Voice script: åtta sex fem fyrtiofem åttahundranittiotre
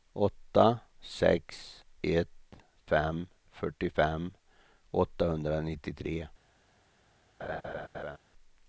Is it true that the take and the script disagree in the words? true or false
true